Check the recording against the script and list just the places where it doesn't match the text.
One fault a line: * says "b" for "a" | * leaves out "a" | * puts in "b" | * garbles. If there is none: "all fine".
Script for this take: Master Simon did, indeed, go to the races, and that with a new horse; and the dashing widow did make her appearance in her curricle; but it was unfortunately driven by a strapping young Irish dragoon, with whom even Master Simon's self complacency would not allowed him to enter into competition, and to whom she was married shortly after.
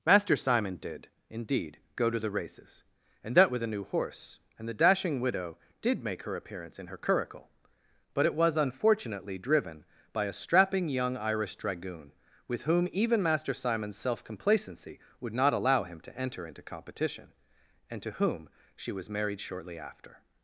* says "allow" for "allowed"